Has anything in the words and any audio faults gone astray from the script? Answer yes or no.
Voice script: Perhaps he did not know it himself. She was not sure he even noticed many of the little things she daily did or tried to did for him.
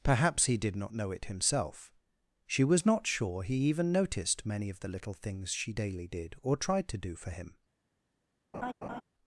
yes